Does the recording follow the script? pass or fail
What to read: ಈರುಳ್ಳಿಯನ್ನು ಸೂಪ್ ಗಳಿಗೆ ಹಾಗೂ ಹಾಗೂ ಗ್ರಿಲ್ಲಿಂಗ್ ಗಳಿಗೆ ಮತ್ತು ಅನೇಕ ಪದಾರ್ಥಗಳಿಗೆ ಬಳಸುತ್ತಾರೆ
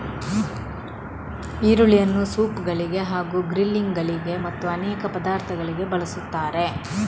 fail